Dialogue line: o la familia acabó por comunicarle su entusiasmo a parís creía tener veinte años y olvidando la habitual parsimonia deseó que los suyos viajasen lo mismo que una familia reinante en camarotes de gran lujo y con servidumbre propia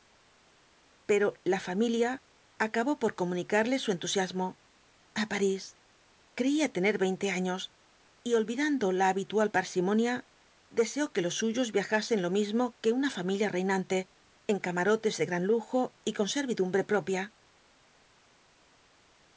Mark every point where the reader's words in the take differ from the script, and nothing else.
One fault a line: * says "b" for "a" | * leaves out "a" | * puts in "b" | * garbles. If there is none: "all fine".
* says "pero" for "o"